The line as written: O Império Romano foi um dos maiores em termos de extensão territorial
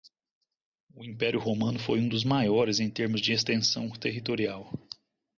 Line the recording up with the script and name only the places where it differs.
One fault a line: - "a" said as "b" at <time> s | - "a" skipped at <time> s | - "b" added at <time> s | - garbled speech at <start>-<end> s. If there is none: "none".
none